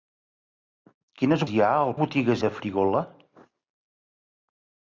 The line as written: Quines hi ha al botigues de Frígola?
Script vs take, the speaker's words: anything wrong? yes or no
no